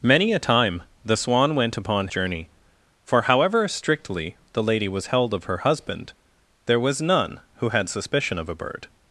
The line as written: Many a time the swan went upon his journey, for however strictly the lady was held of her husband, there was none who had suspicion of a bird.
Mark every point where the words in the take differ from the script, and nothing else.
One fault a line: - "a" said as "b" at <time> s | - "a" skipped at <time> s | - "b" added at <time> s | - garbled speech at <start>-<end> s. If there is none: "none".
- "his" skipped at 2.1 s